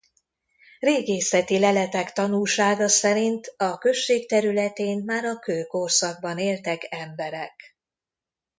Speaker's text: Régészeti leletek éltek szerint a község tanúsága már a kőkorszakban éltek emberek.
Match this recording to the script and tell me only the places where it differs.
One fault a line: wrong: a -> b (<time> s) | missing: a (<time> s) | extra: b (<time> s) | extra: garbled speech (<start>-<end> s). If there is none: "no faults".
wrong: éltek -> tanúsága (2.1 s)
wrong: tanúsága -> területén (4.3 s)